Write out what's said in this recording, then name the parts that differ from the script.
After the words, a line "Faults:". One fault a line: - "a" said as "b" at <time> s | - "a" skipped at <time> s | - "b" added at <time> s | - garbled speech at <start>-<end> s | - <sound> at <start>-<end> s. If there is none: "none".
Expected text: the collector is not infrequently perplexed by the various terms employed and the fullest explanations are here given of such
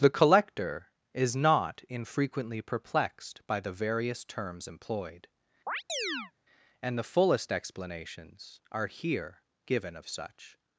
the collector is not infrequently perplexed by the various terms employed and the fullest explanations are here given of such
Faults:
- chirp at 5.7-6.3 s